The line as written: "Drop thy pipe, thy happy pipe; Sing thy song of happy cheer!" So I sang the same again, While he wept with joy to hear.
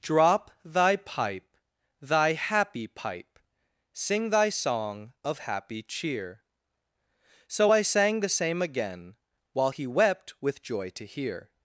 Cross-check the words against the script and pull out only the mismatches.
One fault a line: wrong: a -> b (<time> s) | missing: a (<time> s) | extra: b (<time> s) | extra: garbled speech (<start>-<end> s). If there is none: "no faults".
no faults